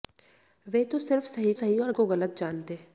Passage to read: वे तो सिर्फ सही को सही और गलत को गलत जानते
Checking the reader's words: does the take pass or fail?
fail